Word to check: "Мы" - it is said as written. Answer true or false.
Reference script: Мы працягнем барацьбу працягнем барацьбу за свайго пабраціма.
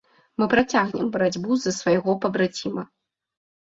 true